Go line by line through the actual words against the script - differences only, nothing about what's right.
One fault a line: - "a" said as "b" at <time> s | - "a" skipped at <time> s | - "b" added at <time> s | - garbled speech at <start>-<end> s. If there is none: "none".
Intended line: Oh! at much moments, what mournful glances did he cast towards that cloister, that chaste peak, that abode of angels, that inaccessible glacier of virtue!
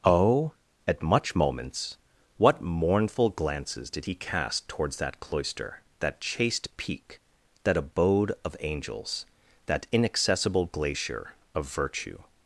none